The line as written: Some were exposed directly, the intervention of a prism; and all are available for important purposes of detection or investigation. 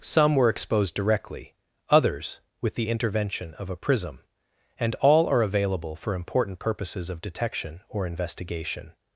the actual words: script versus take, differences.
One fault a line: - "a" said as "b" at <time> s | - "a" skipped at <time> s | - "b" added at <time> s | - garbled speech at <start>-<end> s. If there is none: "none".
- "others with" added at 1.9 s